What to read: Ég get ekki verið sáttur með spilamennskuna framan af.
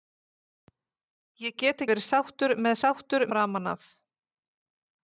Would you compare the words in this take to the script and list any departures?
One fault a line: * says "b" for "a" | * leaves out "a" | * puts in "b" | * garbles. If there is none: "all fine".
* leaves out "ekki"
* says "sáttur" for "spilamennskuna"